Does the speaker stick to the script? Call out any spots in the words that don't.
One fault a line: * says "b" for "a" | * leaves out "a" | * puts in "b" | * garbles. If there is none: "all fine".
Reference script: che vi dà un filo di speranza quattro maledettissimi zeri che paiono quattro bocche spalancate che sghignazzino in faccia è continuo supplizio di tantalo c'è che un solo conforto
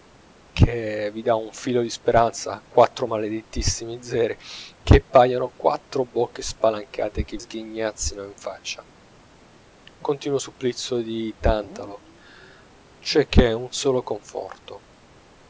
all fine